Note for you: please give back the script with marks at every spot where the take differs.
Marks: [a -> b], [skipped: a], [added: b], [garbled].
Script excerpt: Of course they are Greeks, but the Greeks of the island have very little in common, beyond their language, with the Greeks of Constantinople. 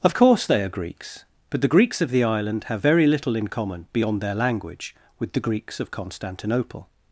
Of course they are Greeks, but the Greeks of the island have very little in common, beyond their language, with the Greeks of Constantinople.